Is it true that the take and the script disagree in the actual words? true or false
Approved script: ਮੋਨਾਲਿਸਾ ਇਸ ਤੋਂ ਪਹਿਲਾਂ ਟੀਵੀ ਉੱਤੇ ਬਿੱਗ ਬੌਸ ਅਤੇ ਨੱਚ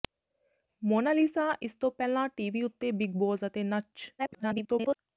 true